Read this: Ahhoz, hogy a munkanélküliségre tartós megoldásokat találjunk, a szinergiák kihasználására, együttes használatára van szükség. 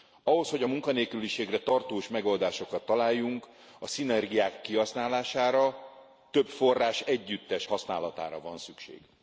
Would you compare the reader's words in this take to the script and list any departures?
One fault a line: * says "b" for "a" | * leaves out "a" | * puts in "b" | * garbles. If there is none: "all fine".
* puts in "több forrás"